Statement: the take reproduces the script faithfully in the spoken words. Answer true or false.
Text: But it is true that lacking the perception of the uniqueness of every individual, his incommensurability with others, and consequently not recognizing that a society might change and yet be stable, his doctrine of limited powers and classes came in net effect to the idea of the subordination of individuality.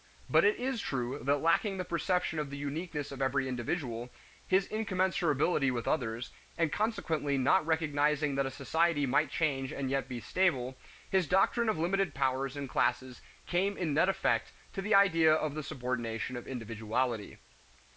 true